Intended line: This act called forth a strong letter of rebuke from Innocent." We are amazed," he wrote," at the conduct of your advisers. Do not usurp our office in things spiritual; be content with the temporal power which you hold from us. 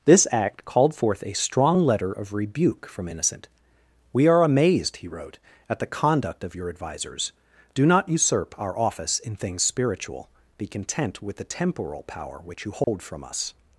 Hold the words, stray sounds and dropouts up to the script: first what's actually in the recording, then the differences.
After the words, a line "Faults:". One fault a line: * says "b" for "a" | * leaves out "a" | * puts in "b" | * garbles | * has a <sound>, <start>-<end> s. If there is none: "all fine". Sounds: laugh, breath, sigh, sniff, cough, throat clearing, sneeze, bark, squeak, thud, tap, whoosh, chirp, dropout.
This act called forth a strong letter of rebuke from Innocent." We are amazed," he wrote," at the conduct of your advisers. Do not usurp our office in things spiritual; be content with the temporal power which you hold from us.
Faults:
* has a dropout, 12.8-12.9 s